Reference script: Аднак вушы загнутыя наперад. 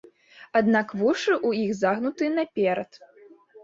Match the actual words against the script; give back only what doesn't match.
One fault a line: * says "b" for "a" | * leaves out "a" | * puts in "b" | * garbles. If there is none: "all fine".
* puts in "ў іх"